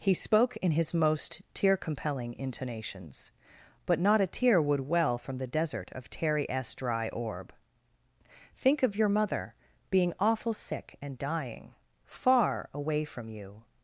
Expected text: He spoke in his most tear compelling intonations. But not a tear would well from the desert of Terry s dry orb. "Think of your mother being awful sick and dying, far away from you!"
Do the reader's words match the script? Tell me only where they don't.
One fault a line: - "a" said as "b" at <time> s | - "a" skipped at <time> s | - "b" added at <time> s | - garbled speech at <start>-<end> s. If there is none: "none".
none